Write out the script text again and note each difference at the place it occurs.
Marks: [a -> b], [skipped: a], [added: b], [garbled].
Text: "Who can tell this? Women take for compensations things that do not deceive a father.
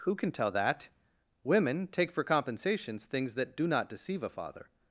"Who can tell [this? -> that] Women take for compensations things that do not deceive a father.